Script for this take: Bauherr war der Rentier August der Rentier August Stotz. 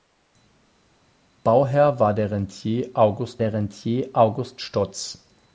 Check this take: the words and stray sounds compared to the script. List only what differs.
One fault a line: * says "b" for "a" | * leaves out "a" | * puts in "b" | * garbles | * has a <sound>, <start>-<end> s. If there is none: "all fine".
all fine